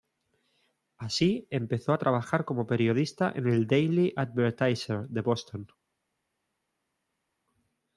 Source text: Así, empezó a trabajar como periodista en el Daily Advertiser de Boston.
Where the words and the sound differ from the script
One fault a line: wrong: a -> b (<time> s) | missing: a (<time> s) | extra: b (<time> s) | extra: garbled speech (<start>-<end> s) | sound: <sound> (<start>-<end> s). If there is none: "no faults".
no faults